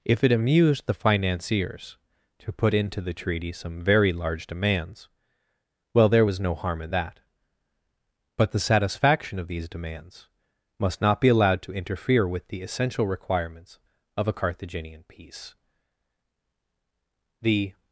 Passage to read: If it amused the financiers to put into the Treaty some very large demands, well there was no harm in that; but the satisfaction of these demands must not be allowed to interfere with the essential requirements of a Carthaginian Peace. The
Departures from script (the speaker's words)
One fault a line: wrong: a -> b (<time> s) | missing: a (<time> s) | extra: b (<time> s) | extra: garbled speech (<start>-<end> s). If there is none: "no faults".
no faults